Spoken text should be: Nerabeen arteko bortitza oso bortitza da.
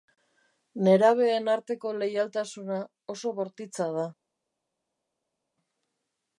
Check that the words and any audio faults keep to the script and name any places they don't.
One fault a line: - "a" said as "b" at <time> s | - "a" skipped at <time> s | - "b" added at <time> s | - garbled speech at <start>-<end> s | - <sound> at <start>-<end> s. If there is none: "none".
- "bortitza" said as "leialtasuna" at 2.0 s